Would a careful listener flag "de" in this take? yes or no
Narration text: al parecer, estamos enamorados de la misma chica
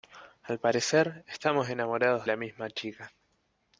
yes